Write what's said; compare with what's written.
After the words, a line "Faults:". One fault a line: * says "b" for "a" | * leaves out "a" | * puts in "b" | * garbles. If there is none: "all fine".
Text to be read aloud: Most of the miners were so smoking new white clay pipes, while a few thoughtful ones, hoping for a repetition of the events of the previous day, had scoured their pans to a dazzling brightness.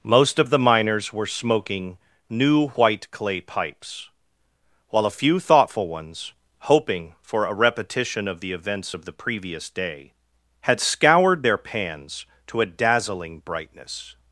Most of the miners were smoking new white clay pipes, while a few thoughtful ones, hoping for a repetition of the events of the previous day, had scoured their pans to a dazzling brightness.
Faults:
* leaves out "so"